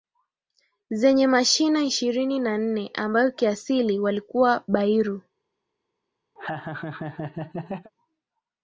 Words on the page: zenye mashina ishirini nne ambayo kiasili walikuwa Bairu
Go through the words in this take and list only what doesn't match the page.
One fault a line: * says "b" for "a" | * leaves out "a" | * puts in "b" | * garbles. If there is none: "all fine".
* puts in "na"